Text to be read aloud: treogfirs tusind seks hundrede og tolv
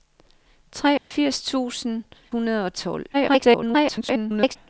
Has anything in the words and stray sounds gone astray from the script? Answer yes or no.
yes